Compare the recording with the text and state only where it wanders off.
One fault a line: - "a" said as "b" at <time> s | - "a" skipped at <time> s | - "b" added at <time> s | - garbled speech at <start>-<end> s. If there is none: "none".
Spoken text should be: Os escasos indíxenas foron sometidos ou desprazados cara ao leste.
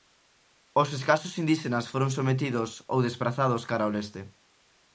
none